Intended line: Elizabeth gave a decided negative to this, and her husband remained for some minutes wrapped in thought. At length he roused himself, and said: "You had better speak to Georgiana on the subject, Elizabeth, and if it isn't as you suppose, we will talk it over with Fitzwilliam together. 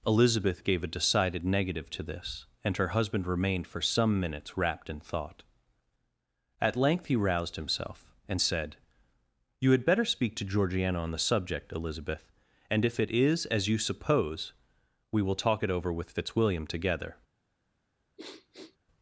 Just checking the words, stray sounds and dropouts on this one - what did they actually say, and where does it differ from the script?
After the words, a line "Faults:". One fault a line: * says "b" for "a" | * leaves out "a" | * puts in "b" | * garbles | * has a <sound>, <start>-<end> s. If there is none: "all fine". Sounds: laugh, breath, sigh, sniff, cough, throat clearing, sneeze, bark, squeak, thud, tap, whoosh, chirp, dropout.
Elizabeth gave a decided negative to this, and her husband remained for some minutes wrapped in thought. At length he roused himself, and said: "You had better speak to Georgiana on the subject, Elizabeth, and if it is as you suppose, we will talk it over with Fitzwilliam together.
Faults:
* says "is" for "isn't"
* has a sniff, 18.2-18.8 s